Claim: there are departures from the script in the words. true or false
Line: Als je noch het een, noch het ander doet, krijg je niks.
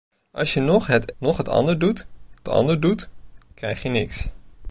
true